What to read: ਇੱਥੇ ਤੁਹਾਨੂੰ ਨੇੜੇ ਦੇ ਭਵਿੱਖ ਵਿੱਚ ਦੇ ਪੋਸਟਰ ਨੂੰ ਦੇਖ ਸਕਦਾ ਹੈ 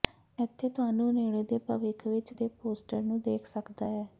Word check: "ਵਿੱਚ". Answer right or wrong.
right